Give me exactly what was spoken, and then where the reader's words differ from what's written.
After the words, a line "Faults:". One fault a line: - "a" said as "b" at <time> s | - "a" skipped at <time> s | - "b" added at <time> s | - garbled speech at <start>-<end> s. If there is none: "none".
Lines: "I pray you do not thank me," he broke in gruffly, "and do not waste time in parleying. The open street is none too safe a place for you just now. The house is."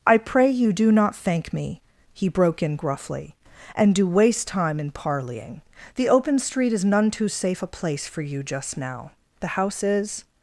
"I pray you do not thank me," he broke in gruffly, "and do waste time in parleying. The open street is none too safe a place for you just now. The house is."
Faults:
- "not" skipped at 4.1 s